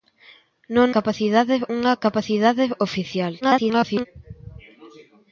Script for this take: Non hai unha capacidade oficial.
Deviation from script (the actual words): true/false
true